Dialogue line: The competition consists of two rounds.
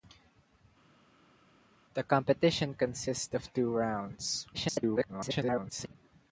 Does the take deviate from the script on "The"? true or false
false